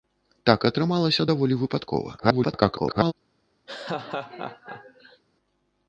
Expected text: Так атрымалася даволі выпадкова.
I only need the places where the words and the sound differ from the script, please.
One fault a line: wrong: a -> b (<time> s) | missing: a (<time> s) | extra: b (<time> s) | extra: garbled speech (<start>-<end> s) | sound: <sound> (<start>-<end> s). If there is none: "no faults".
extra: garbled speech (2.2-3.1 s)
sound: laugh (3.7-5.2 s)